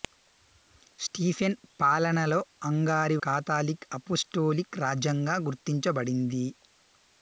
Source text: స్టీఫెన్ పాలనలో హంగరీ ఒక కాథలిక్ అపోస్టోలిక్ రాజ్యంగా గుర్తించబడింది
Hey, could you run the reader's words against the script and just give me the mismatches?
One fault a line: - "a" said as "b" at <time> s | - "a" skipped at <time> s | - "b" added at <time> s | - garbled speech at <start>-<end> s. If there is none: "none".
- "ఒక" skipped at 3.2 s